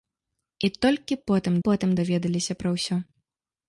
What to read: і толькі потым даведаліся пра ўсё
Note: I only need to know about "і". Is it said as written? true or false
true